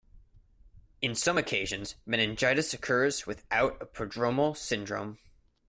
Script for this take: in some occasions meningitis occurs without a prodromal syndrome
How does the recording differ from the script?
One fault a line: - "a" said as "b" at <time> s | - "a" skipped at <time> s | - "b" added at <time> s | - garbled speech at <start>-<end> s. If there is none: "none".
none